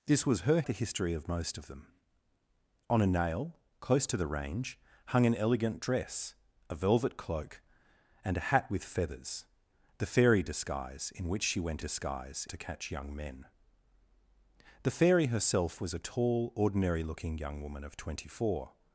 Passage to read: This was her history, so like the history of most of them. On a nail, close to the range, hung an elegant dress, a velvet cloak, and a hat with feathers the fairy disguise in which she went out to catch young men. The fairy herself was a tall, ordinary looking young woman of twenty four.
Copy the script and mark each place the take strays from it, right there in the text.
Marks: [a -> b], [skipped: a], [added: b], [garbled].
This was her [skipped: history, so like] the history of most of them. On a nail, close to the range, hung an elegant dress, a velvet cloak, and a hat with feathers the fairy disguise in which she went [out -> disguise] to catch young men. The fairy herself was a tall, ordinary looking young woman of twenty four.